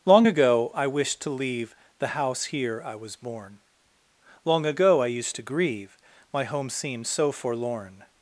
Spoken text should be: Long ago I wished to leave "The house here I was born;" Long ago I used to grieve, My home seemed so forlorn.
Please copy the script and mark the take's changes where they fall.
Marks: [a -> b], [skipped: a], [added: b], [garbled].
Long ago I wished to leave "The house here I was born;" Long ago I used to grieve, My home seemed so forlorn.